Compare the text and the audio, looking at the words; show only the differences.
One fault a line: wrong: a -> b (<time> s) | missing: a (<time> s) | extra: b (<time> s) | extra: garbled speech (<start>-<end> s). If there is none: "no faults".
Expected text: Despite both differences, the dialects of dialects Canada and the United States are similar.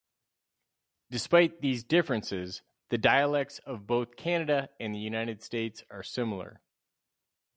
wrong: both -> these (1.6 s)
wrong: dialects -> both (3.8 s)